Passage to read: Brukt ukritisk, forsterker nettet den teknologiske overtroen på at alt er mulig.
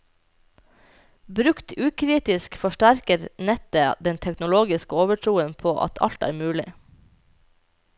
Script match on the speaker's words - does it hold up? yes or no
yes